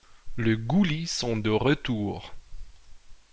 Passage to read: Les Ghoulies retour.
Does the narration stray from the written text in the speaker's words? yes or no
yes